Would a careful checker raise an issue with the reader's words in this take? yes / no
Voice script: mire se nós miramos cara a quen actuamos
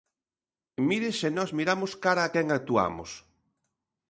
no